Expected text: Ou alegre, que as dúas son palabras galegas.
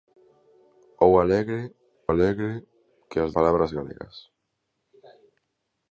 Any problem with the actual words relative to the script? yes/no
yes